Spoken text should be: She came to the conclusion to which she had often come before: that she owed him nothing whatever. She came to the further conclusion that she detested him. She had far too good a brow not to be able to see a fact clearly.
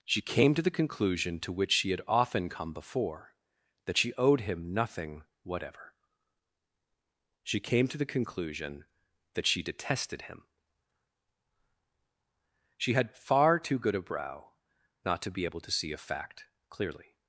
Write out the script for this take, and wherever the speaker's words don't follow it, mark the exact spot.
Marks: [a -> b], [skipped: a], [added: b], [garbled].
She came to the conclusion to which she had often come before: that she owed him nothing whatever. She came to the [skipped: further] conclusion that she detested him. She had far too good a brow not to be able to see a fact clearly.